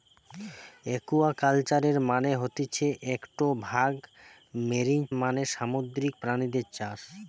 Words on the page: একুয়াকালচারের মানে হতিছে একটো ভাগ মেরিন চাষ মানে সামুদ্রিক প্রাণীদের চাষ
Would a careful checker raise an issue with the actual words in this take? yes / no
yes